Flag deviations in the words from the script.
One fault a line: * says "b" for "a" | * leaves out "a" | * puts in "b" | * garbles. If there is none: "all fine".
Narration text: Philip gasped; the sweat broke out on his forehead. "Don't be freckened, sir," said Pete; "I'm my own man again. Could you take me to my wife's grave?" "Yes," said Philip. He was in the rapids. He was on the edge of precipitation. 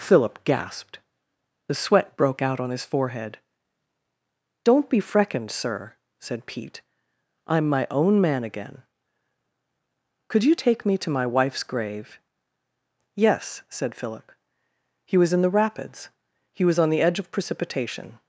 all fine